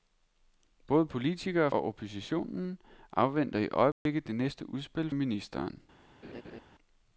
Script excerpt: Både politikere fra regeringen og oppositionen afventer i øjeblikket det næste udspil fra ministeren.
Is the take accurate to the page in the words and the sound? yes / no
no